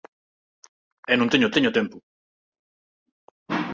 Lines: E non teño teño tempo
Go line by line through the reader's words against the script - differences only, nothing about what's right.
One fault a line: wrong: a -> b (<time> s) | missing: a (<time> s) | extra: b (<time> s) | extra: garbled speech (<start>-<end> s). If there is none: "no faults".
no faults